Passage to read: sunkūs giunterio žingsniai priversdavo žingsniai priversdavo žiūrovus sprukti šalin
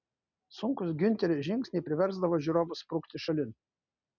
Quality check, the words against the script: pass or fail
fail